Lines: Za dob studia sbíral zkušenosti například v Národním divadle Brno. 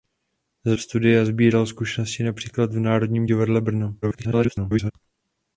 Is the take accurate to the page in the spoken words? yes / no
no